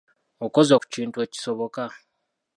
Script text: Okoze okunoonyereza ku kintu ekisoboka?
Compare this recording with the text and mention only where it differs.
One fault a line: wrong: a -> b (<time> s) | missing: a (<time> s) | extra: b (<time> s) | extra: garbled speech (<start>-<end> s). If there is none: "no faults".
missing: okunoonyereza (0.7 s)